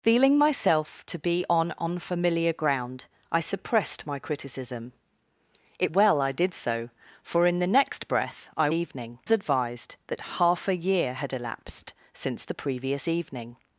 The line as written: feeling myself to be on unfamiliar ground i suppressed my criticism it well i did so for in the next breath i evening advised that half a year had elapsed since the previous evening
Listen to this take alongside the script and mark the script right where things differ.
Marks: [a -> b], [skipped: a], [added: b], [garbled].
feeling myself to be on unfamiliar ground i suppressed my criticism it well i did so for in the next breath i evening advised that half a year had elapsed since the previous evening